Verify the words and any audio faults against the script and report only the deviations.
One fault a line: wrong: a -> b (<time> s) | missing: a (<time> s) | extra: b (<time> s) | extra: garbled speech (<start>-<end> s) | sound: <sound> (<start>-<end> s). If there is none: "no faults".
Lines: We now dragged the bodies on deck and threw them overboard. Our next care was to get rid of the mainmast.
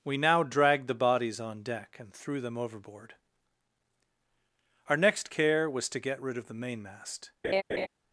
sound: laugh (7.4-7.9 s)